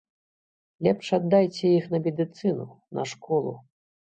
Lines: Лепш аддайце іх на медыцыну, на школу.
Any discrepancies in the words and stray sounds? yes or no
no